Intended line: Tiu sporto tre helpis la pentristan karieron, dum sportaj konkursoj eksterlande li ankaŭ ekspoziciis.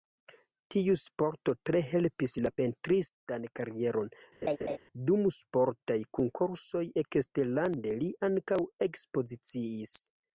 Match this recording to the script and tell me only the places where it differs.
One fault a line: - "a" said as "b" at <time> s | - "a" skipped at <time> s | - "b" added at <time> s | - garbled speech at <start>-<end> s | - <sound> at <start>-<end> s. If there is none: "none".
- laugh at 4.4-4.8 s